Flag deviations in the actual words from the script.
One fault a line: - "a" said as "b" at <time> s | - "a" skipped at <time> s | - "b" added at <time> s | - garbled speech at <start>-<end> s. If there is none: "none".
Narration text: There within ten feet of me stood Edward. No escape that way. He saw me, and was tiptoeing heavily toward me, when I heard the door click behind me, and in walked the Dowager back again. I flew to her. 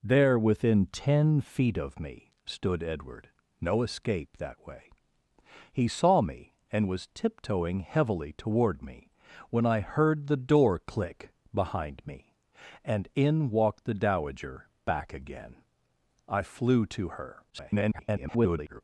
- garbled speech at 17.5-18.8 s